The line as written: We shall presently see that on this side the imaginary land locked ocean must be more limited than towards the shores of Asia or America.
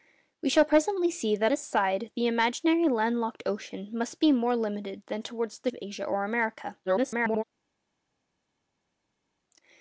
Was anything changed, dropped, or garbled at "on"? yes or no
yes